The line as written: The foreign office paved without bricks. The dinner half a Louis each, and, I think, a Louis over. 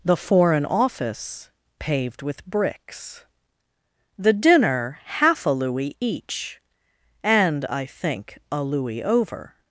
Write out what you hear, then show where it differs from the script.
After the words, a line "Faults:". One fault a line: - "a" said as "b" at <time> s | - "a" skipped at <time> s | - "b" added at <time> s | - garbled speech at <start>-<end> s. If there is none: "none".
The foreign office paved with bricks. The dinner half a Louis each, and, I think, a Louis over.
Faults:
- "without" said as "with" at 2.2 s